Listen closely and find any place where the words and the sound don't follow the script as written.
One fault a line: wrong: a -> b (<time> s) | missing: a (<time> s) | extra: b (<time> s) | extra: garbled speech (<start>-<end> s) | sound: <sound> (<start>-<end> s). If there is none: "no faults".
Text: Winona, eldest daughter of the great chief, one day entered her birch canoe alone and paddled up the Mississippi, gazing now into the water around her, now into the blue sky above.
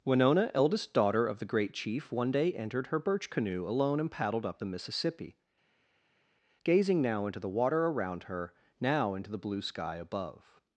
no faults